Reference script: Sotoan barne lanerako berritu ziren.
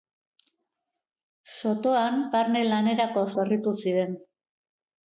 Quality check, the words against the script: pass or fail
pass